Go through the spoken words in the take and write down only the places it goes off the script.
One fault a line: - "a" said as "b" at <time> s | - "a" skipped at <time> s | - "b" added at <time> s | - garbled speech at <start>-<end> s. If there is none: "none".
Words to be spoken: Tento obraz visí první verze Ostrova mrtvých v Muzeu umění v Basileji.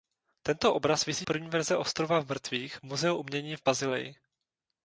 none